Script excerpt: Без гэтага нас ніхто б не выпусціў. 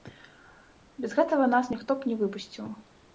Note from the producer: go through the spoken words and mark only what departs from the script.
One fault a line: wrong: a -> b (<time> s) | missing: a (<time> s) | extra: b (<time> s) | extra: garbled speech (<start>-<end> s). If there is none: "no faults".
no faults